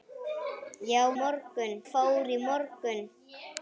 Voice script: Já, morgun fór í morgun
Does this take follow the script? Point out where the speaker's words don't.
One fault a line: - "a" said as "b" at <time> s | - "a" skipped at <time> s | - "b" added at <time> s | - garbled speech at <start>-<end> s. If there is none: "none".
none